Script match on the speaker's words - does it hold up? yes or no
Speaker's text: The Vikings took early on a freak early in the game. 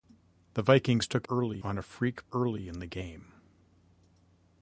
yes